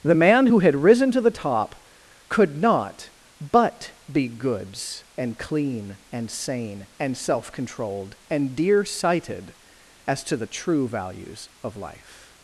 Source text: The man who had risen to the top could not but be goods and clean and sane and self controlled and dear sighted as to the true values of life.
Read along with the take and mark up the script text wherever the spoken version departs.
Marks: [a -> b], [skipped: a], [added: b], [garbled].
The man who had risen to the top could not but be goods and clean and sane and self controlled and dear sighted as to the true values of life.